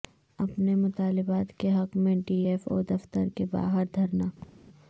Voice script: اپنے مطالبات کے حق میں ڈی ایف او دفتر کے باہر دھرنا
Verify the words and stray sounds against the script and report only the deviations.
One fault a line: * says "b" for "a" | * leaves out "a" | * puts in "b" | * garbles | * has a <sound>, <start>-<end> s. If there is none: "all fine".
* has a laugh, 4.4-4.7 s